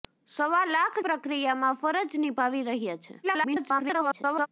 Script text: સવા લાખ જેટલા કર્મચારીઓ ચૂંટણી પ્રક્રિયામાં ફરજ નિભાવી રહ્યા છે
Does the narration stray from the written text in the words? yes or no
yes